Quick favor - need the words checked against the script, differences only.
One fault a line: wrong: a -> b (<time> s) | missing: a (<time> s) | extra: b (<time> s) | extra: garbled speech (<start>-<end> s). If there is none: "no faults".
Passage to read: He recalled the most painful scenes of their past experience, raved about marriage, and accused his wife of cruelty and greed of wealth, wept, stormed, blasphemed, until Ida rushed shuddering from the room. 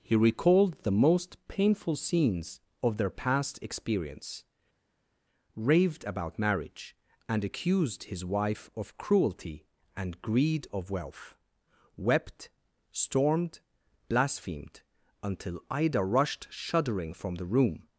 no faults